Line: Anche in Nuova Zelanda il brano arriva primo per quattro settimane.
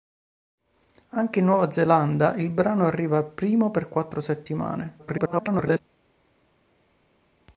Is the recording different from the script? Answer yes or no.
yes